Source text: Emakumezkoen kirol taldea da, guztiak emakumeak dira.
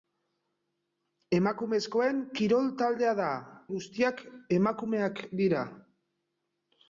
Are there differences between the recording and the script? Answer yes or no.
no